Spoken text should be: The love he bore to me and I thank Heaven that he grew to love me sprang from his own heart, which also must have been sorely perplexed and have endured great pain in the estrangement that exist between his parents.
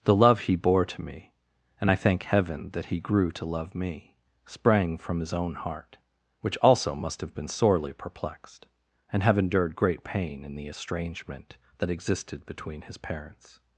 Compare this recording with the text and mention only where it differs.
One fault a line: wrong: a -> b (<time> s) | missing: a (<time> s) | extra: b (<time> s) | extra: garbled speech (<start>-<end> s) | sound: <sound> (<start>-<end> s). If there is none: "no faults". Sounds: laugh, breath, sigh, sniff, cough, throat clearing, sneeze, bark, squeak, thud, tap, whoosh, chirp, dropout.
wrong: exist -> existed (11.9 s)